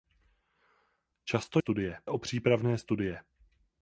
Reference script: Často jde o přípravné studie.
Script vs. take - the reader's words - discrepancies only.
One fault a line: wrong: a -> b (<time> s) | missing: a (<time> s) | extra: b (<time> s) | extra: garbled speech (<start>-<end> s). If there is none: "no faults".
wrong: jde -> studie (1.6 s)